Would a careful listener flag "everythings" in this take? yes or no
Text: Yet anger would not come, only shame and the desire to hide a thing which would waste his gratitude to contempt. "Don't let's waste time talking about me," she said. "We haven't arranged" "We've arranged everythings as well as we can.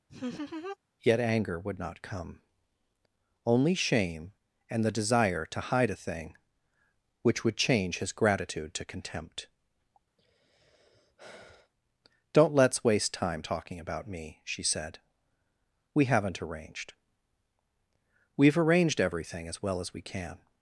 yes